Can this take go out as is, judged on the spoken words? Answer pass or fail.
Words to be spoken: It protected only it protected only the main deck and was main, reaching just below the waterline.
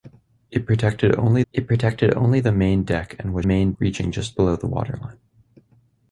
pass